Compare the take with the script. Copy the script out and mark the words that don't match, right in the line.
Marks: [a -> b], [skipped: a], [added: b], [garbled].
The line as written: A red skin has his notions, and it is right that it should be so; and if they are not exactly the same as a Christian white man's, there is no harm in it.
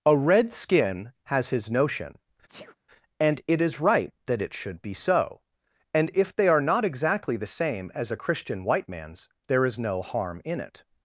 A red skin has his [notions, -> notion] and it is right that it should be so; and if they are not exactly the same as a Christian white man's, there is no harm in it.